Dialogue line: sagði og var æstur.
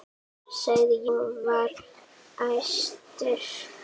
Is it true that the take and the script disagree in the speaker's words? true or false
false